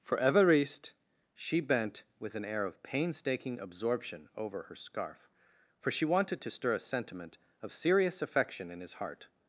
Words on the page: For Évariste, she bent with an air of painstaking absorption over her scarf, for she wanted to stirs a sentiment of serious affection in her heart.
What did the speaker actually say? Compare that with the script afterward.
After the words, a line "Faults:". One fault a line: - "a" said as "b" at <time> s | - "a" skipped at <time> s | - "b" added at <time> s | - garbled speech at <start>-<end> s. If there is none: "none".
For Évariste, she bent with an air of painstaking absorption over her scarf, for she wanted to stir a sentiment of serious affection in his heart.
Faults:
- "stirs" said as "stir" at 6.5 s
- "her" said as "his" at 8.8 s